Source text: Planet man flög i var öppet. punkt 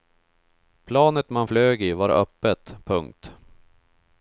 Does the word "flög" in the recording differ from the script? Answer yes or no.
no